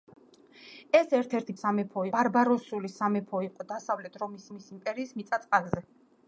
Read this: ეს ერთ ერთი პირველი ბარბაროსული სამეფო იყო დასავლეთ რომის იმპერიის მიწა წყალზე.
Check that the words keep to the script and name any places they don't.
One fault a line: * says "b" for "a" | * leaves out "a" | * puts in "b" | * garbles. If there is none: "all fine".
* says "სამეფო" for "პირველი"
* puts in "რომის"